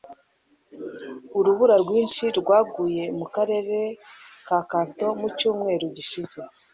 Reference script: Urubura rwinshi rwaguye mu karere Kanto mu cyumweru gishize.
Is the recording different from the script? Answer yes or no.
yes